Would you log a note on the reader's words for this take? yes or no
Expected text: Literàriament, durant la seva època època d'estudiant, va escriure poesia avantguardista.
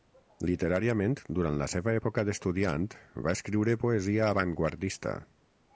yes